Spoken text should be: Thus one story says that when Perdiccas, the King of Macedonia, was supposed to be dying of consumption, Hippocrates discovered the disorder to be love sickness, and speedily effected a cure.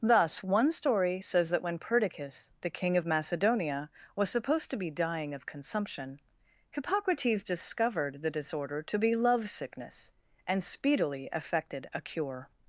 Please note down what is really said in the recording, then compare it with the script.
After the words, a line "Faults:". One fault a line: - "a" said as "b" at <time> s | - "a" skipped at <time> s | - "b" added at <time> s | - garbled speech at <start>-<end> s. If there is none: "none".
Thus one story says that when Perdiccas, the King of Macedonia, was supposed to be dying of consumption, Hippocrates discovered the disorder to be love sickness, and speedily effected a cure.
Faults:
none